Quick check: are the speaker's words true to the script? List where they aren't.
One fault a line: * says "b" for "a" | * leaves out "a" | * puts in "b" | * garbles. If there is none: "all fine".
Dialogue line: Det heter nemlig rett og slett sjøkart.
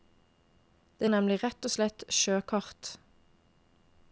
* leaves out "heter"